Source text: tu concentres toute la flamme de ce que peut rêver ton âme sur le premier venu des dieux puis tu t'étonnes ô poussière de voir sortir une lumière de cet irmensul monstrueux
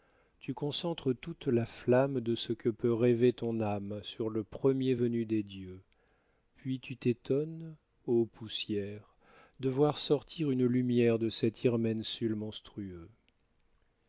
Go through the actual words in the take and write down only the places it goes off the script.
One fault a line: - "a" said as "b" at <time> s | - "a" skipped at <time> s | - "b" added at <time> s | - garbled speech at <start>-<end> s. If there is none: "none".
none